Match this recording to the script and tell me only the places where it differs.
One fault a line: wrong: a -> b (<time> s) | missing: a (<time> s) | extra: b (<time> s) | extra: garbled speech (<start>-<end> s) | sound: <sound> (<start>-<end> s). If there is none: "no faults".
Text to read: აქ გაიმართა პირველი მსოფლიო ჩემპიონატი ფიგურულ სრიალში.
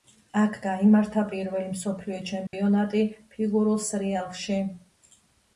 sound: dropout (2.5-2.5 s)